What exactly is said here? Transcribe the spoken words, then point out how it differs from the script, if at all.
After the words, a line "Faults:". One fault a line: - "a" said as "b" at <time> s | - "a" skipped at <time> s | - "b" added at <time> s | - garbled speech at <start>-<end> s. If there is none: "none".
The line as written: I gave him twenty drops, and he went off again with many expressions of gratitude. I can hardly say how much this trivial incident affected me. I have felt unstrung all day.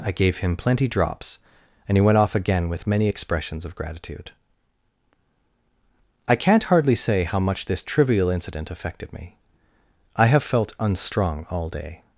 I gave him plenty drops, and he went off again with many expressions of gratitude. I can't hardly say how much this trivial incident affected me. I have felt unstrung all day.
Faults:
- "twenty" said as "plenty" at 0.6 s
- "can" said as "can't" at 6.4 s